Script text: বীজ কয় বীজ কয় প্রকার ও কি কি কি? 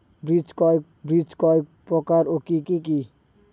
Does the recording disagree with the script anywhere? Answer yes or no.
no